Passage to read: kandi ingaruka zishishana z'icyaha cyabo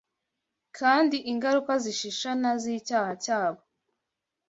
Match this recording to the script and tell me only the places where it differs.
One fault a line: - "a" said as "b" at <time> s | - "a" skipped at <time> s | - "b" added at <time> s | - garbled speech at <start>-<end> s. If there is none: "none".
none